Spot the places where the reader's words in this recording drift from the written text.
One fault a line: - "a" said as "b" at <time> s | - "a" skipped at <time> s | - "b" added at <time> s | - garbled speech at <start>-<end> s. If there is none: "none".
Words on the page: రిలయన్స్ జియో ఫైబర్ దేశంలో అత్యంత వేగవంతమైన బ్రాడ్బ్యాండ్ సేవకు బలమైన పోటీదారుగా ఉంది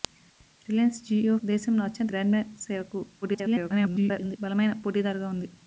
- "ఫైబర్" skipped at 1.4 s
- "వేగవంతమైన" skipped at 2.1 s
- garbled speech at 3.2-4.4 s